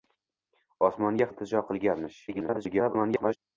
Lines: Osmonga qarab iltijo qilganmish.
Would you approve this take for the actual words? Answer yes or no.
no